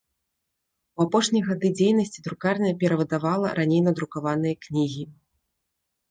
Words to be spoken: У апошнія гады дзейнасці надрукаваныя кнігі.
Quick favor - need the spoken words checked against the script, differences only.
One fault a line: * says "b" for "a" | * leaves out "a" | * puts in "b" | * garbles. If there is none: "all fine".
* puts in "друкарня перавыдавала раней"